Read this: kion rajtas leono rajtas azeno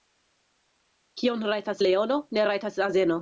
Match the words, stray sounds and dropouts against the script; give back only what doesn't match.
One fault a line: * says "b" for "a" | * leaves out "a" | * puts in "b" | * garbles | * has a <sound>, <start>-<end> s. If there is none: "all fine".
* puts in "ne"